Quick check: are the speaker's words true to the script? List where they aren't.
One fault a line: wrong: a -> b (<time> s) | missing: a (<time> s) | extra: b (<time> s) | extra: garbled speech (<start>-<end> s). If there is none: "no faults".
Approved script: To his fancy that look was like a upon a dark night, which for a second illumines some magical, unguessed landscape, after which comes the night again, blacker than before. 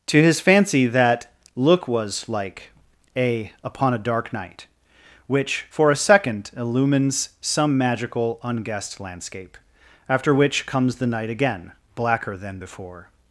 no faults